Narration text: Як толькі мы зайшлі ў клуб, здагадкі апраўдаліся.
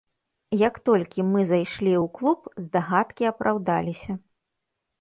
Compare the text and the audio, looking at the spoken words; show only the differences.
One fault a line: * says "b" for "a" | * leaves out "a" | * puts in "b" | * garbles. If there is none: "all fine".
all fine